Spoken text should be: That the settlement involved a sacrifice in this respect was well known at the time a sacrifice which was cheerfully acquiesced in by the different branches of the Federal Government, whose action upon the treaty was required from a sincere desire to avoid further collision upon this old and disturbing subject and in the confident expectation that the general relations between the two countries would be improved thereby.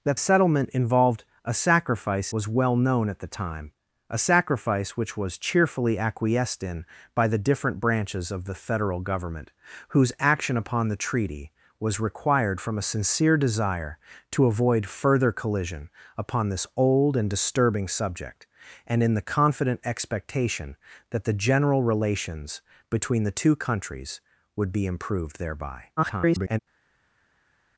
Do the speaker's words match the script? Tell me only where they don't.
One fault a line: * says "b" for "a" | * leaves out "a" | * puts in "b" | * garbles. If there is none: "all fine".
* leaves out "the"
* leaves out "in this respect"
* garbles